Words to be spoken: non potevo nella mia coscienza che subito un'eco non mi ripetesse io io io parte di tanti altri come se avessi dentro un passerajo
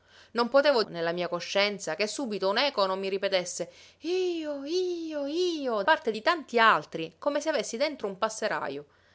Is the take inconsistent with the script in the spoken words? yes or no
no